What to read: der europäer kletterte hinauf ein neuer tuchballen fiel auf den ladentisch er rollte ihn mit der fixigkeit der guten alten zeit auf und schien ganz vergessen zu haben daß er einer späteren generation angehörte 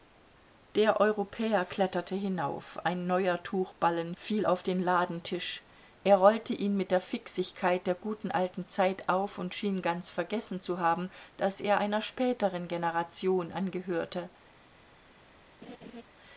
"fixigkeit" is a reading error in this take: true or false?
false